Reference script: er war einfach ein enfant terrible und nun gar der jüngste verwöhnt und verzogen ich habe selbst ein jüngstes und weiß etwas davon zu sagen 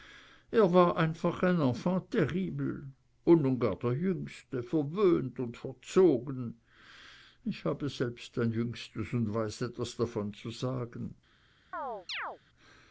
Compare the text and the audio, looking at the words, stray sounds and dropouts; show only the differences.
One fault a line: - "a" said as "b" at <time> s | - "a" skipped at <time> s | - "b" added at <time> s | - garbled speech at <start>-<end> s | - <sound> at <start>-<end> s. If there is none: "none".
- chirp at 11.7-12.4 s